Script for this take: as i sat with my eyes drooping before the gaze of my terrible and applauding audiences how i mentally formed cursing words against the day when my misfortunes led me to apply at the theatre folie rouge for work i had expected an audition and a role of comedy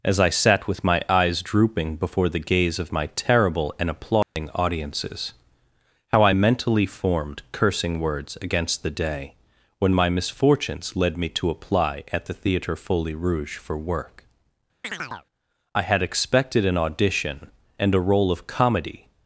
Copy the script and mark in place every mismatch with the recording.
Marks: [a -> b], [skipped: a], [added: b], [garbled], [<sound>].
as i sat with my eyes drooping before the gaze of my terrible and applauding [dropout] audiences how i mentally formed cursing words against the day when my misfortunes led me to apply at the theatre folie rouge for work [chirp] i had expected an audition and a role of comedy